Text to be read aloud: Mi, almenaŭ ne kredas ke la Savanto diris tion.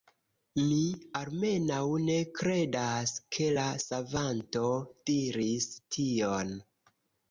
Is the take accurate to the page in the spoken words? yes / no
yes